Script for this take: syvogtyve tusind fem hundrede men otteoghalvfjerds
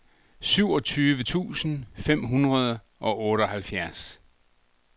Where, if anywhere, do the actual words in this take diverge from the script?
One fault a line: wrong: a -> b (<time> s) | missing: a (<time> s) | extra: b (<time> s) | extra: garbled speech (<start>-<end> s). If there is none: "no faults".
wrong: men -> og (3.0 s)